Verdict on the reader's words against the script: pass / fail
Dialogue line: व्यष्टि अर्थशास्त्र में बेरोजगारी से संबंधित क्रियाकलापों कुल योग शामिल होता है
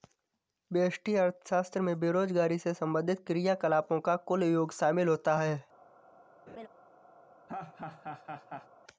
fail